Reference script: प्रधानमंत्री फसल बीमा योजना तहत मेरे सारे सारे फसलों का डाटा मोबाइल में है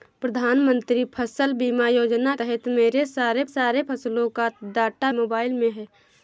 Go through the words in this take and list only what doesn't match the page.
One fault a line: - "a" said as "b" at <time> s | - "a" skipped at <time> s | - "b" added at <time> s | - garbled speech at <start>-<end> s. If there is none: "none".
none